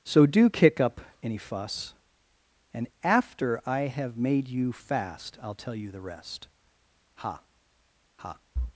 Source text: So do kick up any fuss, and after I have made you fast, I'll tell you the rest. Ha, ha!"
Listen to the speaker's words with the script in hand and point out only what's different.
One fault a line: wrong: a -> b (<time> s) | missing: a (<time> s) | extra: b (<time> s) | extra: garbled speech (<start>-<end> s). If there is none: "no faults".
no faults